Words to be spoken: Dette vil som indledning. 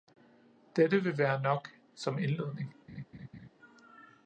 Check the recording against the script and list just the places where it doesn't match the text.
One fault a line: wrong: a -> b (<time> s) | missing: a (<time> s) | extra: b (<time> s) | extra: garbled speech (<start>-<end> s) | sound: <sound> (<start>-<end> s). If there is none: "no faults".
extra: være nok (1.2 s)
sound: laugh (2.9-3.5 s)